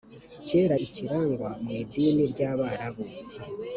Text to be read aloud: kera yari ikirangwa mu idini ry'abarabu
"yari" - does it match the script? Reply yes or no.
no